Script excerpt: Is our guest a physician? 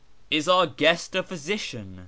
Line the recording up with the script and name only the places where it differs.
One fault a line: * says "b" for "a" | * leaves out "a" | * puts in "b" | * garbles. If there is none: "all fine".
all fine